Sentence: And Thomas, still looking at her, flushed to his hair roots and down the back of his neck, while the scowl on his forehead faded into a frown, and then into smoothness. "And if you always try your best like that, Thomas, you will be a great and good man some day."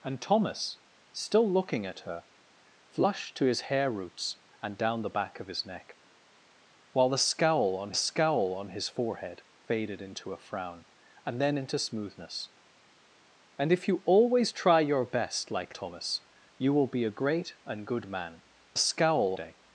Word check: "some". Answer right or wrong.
wrong